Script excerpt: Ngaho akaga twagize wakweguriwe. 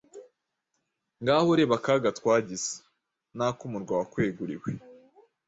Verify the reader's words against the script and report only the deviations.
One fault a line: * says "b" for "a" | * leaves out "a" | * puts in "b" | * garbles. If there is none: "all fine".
* puts in "reba"
* puts in "n'ak'umurwa"